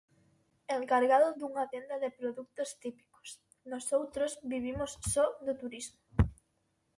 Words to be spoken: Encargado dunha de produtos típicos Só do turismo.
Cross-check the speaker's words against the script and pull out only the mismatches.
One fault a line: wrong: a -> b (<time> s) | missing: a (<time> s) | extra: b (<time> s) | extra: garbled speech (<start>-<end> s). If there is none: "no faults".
extra: tenda (1.7 s)
extra: Nosoutros vivimos (3.7 s)